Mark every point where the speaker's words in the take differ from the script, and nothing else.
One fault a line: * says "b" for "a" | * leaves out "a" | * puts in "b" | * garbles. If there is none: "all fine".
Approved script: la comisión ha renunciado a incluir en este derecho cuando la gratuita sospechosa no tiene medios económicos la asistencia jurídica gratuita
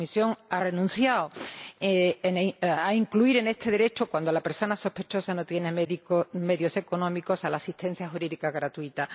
* says "persona" for "gratuita"